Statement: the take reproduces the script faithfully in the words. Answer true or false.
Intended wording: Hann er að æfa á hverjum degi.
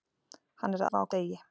false